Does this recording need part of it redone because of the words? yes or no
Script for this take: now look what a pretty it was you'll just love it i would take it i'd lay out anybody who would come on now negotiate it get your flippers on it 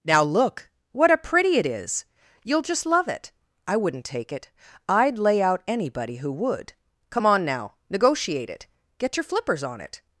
yes